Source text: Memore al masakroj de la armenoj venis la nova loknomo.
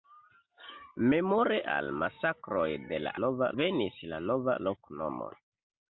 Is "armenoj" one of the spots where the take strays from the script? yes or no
yes